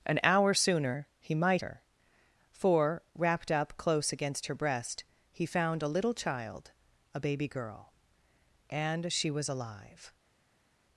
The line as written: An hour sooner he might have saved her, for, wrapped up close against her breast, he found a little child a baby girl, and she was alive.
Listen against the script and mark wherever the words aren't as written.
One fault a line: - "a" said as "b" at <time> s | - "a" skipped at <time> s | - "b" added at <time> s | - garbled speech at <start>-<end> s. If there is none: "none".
- "have saved" skipped at 1.6 s